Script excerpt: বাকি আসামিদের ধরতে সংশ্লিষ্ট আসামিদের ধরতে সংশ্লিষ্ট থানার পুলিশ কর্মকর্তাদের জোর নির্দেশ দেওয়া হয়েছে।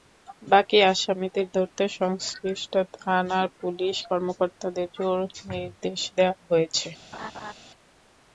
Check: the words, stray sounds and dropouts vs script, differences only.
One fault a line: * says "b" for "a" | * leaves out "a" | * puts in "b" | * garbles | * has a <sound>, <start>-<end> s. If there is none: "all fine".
* leaves out "আসামিদের ধরতে সংশ্লিষ্ট"
* has a laugh, 7.1-7.5 s